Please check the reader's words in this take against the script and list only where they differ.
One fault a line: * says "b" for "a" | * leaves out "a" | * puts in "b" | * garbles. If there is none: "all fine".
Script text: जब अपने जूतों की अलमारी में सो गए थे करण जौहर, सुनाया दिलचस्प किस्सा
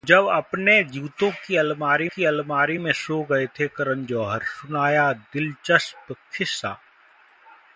* puts in "की अलमारी"